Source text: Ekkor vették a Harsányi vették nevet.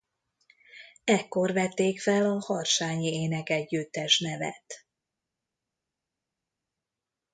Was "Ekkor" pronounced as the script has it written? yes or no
yes